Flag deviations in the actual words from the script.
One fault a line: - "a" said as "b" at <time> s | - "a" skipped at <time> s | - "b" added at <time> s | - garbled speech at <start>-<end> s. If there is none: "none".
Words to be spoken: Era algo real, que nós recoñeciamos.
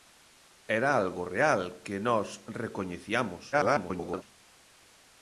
- garbled speech at 3.5-4.2 s